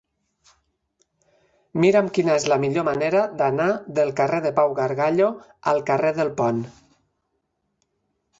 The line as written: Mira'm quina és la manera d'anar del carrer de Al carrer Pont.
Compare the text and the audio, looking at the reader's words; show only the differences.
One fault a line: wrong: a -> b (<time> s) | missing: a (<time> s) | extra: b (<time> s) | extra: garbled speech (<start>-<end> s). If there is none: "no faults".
extra: millor (2.6 s)
extra: Pau Gargallo (4.6 s)
extra: del (6.2 s)